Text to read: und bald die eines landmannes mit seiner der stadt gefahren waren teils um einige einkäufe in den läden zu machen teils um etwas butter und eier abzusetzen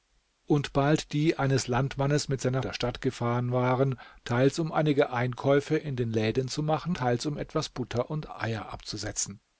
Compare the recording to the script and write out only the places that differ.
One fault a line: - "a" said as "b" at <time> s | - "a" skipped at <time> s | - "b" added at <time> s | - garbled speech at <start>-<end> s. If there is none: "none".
none